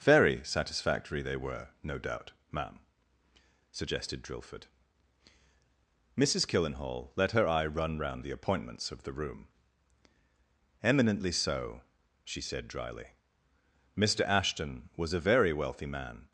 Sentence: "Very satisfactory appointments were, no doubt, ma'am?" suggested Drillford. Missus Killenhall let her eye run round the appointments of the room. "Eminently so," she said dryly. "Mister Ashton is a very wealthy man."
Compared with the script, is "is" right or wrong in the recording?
wrong